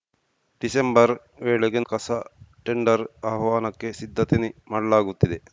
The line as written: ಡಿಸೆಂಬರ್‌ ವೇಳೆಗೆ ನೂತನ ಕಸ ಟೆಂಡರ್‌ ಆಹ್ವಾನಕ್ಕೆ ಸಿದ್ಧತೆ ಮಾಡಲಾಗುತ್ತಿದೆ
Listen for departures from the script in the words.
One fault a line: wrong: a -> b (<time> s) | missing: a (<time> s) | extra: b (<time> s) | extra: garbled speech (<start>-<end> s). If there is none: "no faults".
missing: ನೂತನ (1.8 s)